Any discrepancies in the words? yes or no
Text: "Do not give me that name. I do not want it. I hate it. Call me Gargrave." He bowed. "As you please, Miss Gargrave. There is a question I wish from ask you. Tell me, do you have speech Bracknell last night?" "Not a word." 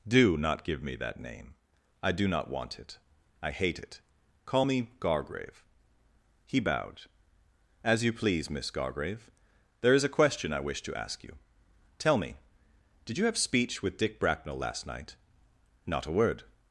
yes